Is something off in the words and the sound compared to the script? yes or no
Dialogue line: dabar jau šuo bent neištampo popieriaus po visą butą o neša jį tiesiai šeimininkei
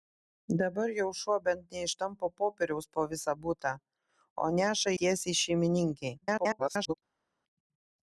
yes